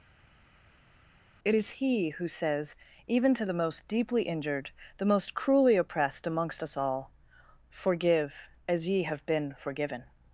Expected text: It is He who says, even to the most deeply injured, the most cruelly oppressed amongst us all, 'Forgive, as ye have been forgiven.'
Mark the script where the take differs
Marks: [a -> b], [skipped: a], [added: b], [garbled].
It is He who says, even to the most deeply injured, the most cruelly oppressed amongst us all, 'Forgive, as ye have been forgiven.'